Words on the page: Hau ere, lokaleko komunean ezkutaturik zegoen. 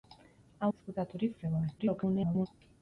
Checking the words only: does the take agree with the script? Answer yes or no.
no